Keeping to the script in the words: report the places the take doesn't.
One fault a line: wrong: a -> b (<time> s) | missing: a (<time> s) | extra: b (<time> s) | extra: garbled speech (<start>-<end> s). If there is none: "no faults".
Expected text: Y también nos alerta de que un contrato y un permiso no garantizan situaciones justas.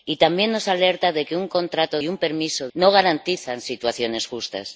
no faults